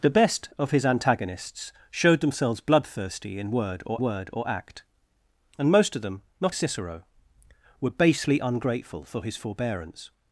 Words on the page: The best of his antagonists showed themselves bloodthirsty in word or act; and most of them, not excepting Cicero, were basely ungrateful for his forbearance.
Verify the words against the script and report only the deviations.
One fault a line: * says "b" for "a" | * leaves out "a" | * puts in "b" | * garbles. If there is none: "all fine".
* puts in "word or"
* leaves out "excepting"